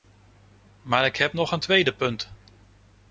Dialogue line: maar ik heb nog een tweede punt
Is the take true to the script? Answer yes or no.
yes